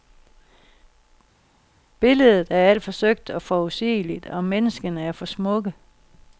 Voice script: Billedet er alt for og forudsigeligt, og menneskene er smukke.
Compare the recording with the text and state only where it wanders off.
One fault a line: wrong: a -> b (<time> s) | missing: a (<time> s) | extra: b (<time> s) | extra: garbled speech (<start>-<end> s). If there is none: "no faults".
extra: søgt (2.9 s)
extra: for (5.1 s)